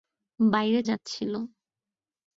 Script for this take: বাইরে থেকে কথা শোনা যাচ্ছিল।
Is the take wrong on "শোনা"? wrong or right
wrong